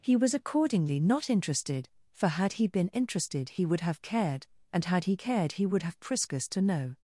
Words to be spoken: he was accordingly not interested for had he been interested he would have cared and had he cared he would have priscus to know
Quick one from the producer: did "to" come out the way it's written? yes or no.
yes